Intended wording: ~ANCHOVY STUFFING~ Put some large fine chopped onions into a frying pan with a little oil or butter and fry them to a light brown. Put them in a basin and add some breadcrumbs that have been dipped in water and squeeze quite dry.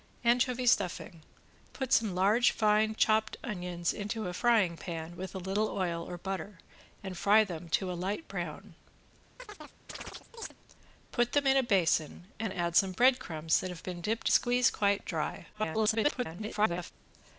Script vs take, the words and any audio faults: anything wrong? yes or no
yes